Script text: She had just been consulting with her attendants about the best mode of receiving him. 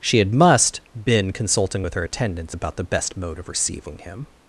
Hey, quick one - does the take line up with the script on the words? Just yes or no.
no